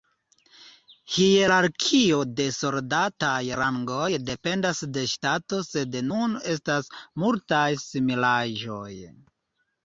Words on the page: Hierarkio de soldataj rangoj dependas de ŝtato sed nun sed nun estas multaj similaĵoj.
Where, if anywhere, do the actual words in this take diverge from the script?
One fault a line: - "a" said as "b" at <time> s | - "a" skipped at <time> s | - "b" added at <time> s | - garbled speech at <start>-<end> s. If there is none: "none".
- "sed nun" skipped at 6.4 s